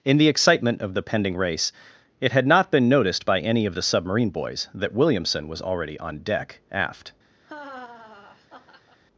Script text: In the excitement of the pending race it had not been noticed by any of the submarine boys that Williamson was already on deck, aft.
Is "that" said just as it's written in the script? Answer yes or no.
yes